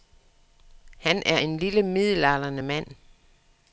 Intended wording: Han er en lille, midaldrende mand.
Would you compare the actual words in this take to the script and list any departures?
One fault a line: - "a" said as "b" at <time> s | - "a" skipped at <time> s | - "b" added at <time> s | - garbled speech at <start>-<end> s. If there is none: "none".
none